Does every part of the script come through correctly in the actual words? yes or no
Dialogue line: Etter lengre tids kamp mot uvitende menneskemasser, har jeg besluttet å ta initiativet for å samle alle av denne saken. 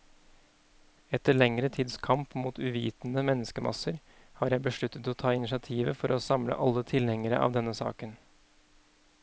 no